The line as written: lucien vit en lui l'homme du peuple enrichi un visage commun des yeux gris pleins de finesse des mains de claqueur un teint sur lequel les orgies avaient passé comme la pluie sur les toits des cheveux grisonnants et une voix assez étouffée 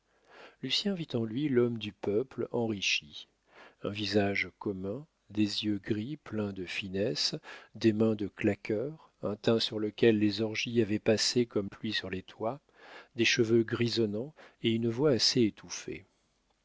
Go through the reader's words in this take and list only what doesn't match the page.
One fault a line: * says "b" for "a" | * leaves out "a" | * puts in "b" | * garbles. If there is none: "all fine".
* leaves out "la"